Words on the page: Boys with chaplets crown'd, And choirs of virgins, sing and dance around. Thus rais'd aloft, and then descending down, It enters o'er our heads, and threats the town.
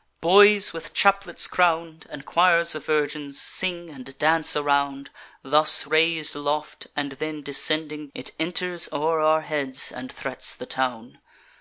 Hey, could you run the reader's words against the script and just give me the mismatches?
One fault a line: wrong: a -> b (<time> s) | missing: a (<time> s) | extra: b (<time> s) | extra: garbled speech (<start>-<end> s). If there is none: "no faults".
missing: down (8.1 s)